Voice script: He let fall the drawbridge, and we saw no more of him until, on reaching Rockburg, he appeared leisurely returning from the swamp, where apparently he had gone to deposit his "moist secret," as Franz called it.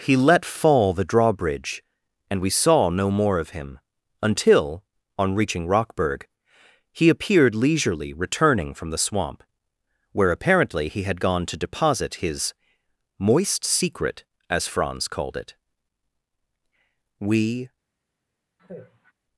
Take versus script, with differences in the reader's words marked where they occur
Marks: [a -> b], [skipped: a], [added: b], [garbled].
He let fall the drawbridge, and we saw no more of him until, on reaching Rockburg, he appeared leisurely returning from the swamp, where apparently he had gone to deposit his "moist secret," as Franz called it. [added: We]